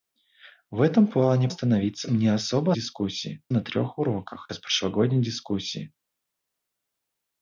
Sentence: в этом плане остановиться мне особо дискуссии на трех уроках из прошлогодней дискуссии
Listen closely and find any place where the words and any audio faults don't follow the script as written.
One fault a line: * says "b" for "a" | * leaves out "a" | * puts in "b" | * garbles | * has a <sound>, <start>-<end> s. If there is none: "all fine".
all fine